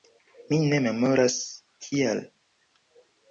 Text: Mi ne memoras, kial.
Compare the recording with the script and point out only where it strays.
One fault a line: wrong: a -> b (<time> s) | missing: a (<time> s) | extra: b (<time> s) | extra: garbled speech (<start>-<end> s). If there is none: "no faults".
no faults